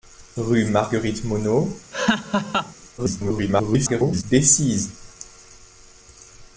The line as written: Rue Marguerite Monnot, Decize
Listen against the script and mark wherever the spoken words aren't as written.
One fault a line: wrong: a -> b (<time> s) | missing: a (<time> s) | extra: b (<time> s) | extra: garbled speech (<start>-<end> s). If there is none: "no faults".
extra: garbled speech (3.0-4.2 s)